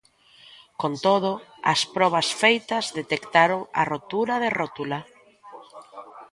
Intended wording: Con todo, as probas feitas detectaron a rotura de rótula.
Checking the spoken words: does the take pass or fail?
pass